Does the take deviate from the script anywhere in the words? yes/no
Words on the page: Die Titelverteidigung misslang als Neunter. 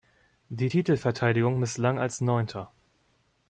no